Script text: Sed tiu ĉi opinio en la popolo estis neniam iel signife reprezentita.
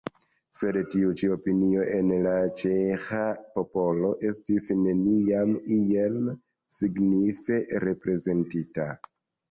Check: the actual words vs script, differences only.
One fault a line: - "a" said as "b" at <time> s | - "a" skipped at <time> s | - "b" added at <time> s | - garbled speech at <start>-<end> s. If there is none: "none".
- "ĉeĥa" added at 2.6 s